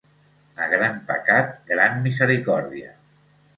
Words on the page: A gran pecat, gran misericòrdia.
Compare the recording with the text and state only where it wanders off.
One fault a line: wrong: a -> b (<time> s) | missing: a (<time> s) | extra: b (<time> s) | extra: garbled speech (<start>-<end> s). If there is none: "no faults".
no faults